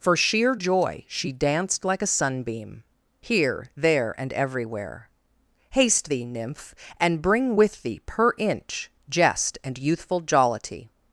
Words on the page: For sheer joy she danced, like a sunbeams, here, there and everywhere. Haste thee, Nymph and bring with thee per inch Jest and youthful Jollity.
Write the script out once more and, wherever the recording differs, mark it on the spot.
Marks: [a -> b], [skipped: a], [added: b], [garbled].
For sheer joy she danced, like a [sunbeams, -> sunbeam] here, there and everywhere. Haste thee, Nymph and bring with thee per inch Jest and youthful Jollity.